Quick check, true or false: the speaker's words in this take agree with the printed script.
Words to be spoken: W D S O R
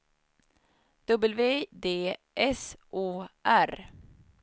true